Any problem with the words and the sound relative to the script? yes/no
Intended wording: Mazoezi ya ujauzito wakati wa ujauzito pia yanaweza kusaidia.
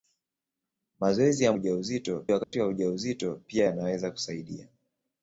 yes